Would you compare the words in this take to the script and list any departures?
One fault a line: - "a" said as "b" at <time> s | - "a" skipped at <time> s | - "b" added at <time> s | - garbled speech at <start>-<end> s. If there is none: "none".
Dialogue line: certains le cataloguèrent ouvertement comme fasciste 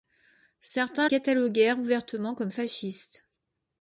- "le" skipped at 1.1 s